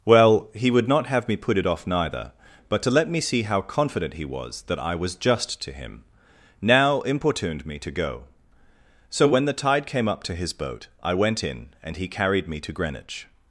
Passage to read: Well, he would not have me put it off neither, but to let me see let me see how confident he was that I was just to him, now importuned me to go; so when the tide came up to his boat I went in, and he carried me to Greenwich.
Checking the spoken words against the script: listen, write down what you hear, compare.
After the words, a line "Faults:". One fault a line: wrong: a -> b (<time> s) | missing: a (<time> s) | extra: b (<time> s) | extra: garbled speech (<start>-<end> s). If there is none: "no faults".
Well, he would not have me put it off neither, but to let me see how confident he was that I was just to him, now importuned me to go; so when the tide came up to his boat I went in, and he carried me to Greenwich.
Faults:
missing: let me see (3.4 s)